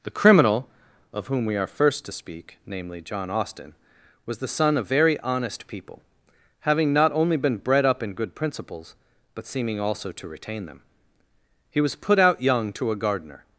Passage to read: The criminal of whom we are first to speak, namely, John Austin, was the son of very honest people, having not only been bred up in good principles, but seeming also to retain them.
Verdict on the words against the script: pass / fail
fail